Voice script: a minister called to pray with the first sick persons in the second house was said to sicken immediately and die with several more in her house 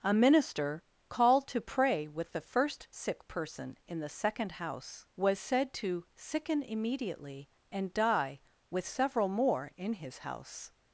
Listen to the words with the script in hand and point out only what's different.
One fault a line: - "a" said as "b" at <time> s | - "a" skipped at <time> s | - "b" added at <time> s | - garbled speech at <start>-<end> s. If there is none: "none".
- "persons" said as "person" at 3.3 s
- "her" said as "his" at 9.9 s